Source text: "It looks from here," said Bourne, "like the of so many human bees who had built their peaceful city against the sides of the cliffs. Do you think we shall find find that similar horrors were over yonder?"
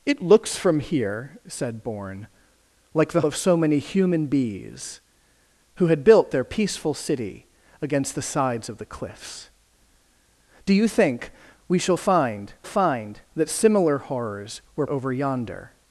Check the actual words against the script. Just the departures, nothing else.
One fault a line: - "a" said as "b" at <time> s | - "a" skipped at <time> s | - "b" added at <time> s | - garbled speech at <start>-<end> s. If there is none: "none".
none